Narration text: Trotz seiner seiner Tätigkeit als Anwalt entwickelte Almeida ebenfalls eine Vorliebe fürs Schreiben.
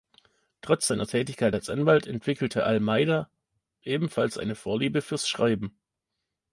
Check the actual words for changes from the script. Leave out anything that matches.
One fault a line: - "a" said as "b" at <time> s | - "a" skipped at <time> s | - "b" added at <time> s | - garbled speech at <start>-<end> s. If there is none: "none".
- "seiner" skipped at 1.1 s